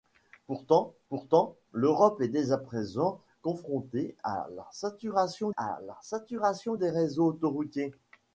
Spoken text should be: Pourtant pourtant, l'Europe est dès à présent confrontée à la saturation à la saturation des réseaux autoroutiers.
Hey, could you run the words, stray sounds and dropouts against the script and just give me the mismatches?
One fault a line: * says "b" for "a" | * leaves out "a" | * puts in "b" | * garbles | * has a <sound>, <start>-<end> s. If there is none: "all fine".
all fine